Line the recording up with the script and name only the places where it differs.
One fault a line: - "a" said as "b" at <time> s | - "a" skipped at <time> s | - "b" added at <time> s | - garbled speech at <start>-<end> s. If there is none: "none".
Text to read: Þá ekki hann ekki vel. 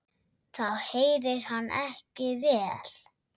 - "ekki" said as "heyrir" at 0.8 s